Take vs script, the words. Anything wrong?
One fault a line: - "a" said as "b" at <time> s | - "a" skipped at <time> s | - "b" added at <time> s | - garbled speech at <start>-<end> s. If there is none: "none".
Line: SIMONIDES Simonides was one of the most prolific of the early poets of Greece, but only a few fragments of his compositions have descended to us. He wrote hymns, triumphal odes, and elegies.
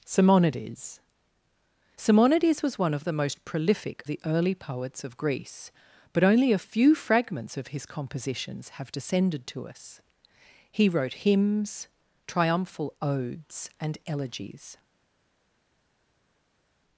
- "of" skipped at 4.0 s